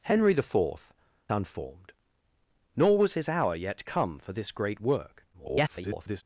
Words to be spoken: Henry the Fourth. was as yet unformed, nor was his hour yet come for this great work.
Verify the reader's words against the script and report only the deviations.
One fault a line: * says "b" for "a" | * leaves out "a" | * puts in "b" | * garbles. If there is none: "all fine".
* leaves out "was as yet"
* garbles